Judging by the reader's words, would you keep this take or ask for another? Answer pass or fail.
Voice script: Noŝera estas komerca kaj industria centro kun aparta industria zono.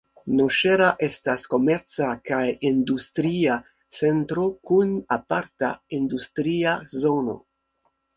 pass